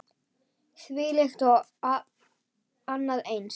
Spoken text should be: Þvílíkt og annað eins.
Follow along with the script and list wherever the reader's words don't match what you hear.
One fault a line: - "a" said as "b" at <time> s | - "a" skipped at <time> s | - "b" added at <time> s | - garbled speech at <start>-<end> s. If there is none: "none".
none